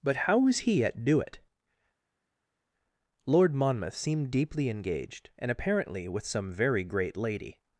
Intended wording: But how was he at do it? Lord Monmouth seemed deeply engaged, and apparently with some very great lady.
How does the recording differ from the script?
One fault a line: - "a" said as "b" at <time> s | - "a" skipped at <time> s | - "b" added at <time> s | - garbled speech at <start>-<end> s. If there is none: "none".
none